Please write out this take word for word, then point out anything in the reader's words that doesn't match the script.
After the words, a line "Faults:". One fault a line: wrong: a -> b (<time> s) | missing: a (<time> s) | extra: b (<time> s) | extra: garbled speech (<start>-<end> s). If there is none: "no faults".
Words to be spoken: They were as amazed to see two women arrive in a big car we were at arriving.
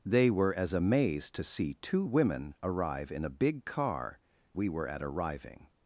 They were as amazed to see two women arrive in a big car we were at arriving.
Faults:
no faults